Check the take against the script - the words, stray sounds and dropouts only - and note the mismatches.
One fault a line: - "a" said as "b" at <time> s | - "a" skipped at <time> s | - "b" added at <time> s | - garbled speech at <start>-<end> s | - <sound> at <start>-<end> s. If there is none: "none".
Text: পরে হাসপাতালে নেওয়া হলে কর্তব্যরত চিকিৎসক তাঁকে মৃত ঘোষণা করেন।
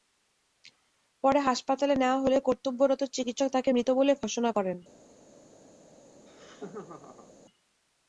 - "বলে" added at 4.0 s
- laugh at 6.1-7.3 s